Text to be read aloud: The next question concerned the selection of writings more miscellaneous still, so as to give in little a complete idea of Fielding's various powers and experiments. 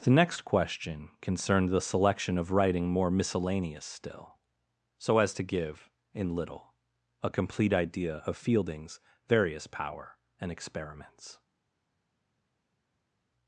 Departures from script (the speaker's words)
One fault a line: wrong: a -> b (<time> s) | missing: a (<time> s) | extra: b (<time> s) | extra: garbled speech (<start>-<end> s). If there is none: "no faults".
wrong: writings -> writing (2.5 s)
wrong: powers -> power (9.7 s)